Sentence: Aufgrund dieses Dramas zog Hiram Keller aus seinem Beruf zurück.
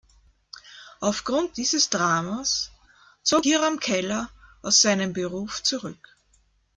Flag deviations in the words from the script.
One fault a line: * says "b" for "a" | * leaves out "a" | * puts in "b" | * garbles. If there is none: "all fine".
all fine